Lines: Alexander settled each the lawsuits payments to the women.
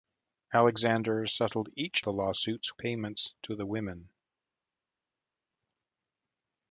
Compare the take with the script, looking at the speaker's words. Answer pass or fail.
pass